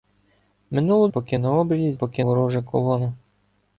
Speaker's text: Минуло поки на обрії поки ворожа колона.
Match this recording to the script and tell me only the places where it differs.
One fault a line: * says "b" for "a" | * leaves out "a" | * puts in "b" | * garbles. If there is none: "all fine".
all fine